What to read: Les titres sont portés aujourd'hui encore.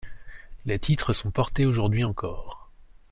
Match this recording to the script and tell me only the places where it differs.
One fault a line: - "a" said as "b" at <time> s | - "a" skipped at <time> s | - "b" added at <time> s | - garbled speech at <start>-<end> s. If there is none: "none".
none